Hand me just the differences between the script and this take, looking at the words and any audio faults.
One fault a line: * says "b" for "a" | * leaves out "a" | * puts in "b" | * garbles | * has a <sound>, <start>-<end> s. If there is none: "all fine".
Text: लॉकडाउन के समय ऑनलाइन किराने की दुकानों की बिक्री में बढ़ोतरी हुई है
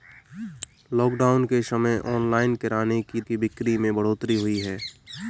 * leaves out "दुकानों"